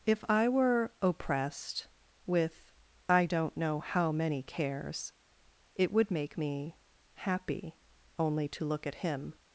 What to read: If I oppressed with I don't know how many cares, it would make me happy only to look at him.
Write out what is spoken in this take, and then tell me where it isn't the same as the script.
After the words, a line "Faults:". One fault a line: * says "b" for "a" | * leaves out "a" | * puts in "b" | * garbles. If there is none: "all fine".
If I were oppressed with I don't know how many cares, it would make me happy only to look at him.
Faults:
* puts in "were"